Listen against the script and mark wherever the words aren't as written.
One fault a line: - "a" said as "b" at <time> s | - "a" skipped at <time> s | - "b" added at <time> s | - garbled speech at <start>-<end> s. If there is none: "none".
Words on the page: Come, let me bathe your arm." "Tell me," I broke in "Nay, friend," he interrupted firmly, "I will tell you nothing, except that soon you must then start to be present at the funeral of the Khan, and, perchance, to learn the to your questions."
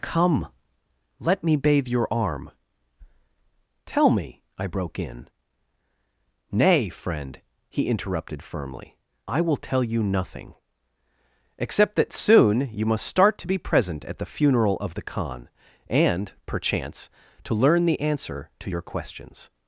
- "then" skipped at 13.1 s
- "answer" added at 18.0 s